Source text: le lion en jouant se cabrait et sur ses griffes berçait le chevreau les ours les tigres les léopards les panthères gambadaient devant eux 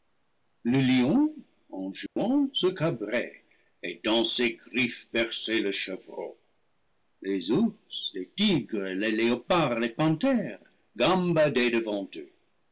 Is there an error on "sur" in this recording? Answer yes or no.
yes